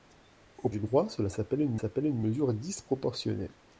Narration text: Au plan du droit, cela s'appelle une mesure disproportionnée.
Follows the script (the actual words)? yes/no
no